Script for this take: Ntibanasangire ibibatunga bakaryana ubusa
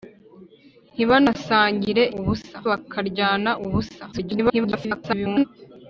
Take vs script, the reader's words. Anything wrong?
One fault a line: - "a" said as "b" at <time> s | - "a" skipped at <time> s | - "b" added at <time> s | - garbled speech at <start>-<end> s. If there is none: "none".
- "ibibatunga" said as "ubusa" at 2.2 s
- garbled speech at 4.1-5.4 s